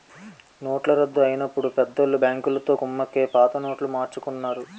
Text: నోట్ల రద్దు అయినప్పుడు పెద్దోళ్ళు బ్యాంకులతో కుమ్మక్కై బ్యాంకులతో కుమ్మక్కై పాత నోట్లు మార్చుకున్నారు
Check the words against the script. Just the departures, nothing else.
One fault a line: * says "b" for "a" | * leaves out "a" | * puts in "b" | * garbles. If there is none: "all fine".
* leaves out "బ్యాంకులతో కుమ్మక్కై"